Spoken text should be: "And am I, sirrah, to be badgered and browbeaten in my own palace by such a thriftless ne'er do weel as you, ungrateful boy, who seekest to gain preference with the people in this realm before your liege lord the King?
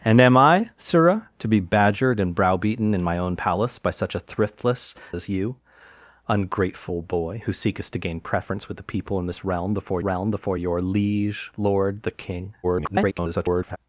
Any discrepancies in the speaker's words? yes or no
yes